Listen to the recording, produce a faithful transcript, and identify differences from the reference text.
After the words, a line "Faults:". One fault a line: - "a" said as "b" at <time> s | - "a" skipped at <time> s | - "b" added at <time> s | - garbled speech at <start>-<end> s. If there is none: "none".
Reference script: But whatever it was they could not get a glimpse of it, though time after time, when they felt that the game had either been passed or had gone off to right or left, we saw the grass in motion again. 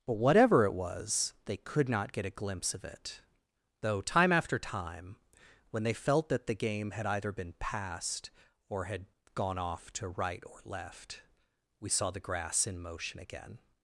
But whatever it was they could not get a glimpse of it, though time after time, when they felt that the game had either been passed or had gone off to right or left, we saw the grass in motion again.
Faults:
none